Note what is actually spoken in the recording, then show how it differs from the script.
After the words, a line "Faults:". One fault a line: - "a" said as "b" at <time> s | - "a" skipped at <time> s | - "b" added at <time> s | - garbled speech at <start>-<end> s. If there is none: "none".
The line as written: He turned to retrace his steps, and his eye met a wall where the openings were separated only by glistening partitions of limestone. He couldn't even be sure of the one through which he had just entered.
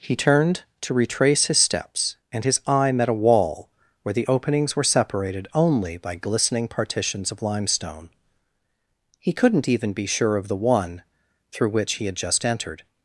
He turned to retrace his steps, and his eye met a wall where the openings were separated only by glistening partitions of limestone. He couldn't even be sure of the one through which he had just entered.
Faults:
none